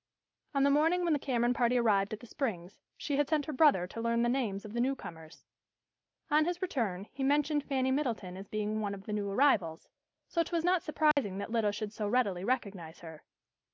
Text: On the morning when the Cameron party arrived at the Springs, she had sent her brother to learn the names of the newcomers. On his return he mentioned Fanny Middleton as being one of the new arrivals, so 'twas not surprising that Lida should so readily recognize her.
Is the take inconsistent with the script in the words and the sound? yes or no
yes